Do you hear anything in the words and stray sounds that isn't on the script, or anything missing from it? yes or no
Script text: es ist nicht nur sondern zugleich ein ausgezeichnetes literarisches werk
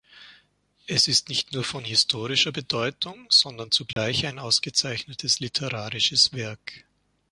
yes